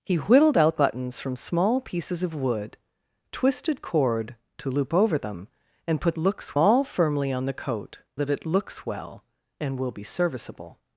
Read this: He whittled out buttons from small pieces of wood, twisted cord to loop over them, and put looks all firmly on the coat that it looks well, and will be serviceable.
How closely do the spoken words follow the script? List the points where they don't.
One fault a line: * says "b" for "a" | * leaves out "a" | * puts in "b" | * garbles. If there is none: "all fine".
all fine